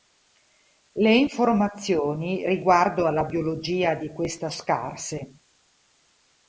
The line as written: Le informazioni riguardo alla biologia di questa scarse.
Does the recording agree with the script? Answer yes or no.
yes